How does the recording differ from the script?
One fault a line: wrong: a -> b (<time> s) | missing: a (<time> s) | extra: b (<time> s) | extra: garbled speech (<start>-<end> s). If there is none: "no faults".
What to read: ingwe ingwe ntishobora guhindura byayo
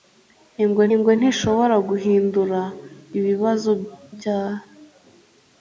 no faults